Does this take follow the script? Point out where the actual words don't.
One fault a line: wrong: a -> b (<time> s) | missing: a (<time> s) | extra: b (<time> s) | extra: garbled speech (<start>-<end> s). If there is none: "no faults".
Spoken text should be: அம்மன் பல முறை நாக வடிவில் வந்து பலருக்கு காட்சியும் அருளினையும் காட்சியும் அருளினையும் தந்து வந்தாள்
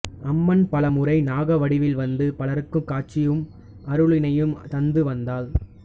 missing: காட்சியும் அருளினையும் (4.6 s)